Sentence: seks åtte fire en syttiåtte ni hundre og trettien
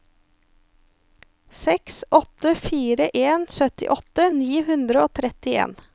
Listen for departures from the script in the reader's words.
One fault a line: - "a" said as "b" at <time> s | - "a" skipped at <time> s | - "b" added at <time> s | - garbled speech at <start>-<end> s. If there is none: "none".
none